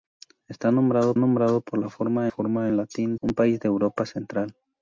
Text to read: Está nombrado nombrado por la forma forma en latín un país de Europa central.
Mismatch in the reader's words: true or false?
false